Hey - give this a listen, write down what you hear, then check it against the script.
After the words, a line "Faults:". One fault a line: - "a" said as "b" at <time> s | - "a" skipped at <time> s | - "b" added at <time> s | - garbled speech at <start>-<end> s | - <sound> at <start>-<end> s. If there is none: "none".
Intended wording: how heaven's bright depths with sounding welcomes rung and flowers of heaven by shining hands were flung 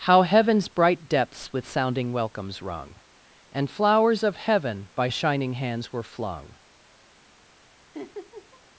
how heaven's bright depths with sounding welcomes rung and flowers of heaven by shining hands were flung
Faults:
- laugh at 7.9-8.6 s